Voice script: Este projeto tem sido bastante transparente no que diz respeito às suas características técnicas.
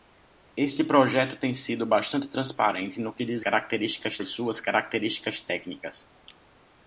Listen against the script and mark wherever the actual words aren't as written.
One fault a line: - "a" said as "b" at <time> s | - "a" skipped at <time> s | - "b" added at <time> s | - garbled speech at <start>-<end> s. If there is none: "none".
- "respeito" said as "características" at 3.4 s